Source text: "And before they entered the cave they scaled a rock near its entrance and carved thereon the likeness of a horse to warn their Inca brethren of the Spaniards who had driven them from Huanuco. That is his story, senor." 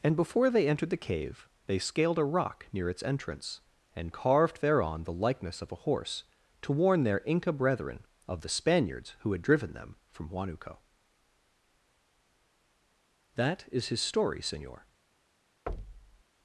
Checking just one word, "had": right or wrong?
right